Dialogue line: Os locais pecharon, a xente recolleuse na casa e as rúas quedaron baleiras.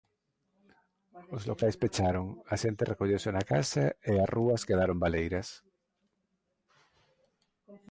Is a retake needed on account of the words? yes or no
no